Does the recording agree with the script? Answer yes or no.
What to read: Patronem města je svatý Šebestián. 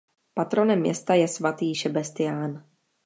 yes